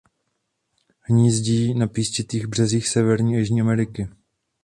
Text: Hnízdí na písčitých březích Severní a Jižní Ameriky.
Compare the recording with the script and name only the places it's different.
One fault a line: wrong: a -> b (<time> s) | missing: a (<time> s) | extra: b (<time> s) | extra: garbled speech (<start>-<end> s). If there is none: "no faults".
no faults